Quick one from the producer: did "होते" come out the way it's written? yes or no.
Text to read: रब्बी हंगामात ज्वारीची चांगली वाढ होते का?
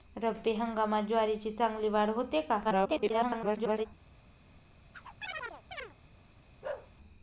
yes